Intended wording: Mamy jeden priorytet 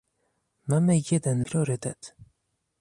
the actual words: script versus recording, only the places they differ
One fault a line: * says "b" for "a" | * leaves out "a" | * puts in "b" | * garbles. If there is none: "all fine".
all fine